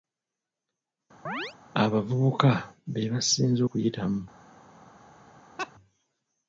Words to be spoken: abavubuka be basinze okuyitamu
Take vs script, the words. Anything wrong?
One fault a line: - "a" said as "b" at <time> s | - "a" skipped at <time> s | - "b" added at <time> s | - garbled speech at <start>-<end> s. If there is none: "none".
none